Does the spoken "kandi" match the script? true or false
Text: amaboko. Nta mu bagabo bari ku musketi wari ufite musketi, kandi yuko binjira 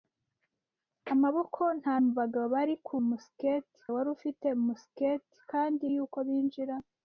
true